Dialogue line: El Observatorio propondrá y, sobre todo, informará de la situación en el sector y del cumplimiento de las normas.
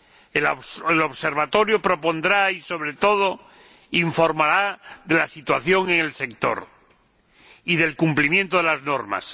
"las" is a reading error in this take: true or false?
false